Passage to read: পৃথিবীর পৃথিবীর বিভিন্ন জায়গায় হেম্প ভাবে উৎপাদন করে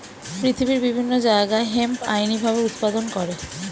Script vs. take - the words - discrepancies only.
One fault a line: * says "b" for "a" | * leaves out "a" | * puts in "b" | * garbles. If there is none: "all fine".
* leaves out "পৃথিবীর"
* puts in "আইনি"